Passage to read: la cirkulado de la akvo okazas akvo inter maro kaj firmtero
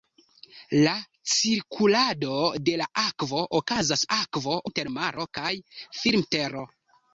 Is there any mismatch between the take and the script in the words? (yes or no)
no